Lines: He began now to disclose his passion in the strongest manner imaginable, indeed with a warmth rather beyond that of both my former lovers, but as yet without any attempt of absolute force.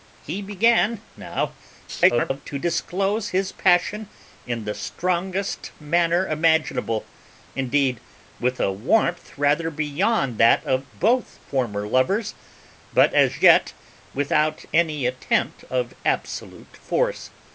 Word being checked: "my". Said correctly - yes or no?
no